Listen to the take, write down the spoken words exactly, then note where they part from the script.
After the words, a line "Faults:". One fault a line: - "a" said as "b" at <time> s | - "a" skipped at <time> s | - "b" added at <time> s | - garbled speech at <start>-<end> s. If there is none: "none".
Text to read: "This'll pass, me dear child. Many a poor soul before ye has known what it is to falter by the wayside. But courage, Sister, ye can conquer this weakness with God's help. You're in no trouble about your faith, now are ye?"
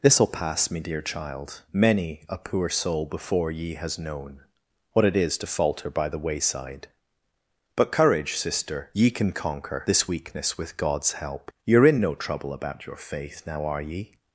"This'll pass, me dear child. Many a poor soul before ye has known what it is to falter by the wayside. But courage, Sister, ye can conquer this weakness with God's help. You're in no trouble about your faith, now are ye?"
Faults:
none